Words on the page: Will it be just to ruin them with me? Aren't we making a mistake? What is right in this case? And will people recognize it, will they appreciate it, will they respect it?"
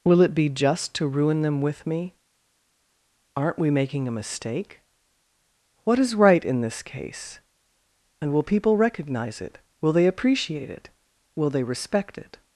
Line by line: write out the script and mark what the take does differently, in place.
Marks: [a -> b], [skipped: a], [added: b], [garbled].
Will it be just to ruin them with me? Aren't we making a mistake? What is right in this case? And will people recognize it, will they appreciate it, will they respect it?"